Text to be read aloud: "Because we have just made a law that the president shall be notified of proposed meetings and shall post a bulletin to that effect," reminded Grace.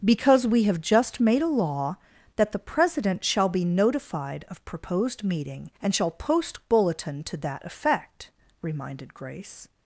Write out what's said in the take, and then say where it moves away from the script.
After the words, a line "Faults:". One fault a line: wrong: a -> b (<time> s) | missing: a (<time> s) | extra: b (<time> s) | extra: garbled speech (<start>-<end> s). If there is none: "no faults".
"Because we have just made a law that the president shall be notified of proposed meeting and shall post bulletin to that effect," reminded Grace.
Faults:
wrong: meetings -> meeting (5.2 s)
missing: a (6.6 s)